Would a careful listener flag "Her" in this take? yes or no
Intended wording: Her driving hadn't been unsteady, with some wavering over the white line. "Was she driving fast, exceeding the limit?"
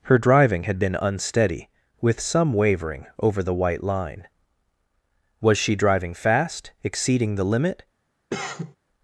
no